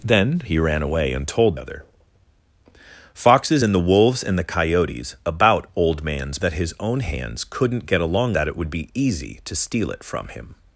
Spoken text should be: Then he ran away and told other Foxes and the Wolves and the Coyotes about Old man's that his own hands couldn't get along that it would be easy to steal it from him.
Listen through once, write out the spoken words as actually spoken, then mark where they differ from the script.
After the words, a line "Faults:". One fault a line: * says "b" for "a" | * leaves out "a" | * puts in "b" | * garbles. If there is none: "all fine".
Then he ran away and told other Foxes and the Wolves and the Coyotes about Old man's that his own hands couldn't get along that it would be easy to steal it from him.
Faults:
all fine